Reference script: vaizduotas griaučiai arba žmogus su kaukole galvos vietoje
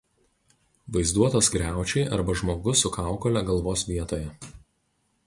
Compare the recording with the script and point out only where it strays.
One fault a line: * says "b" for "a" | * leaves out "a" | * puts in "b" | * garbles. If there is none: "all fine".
all fine